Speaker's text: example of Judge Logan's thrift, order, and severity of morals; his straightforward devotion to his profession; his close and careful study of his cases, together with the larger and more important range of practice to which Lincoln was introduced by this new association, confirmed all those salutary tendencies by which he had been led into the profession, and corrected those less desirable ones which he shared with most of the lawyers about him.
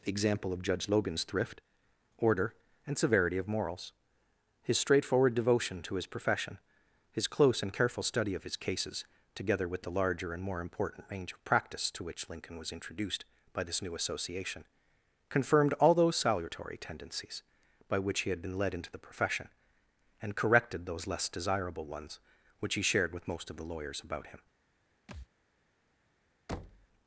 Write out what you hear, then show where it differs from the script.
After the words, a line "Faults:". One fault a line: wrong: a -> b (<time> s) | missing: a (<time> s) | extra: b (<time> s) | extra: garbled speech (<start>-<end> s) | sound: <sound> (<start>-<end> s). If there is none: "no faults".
example of Judge Logan's thrift, order, and severity of morals; his straightforward devotion to his profession; his close and careful study of his cases, together with the larger and more important range of practice to which Lincoln was introduced by this new association, confirmed all those salutary tendencies by which he had been led into the profession, and corrected those less desirable ones which he shared with most of the lawyers about him.
Faults:
sound: thud (25.1-25.3 s)
sound: thud (26.5-26.9 s)